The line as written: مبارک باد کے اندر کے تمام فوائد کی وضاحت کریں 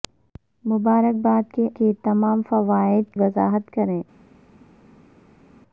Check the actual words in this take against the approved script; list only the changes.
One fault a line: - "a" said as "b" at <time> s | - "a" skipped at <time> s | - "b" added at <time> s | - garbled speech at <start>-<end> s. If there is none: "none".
- "اندر" skipped at 1.7 s
- "کی" skipped at 3.2 s